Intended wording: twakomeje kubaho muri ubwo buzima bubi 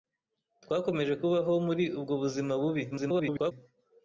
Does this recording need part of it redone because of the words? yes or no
yes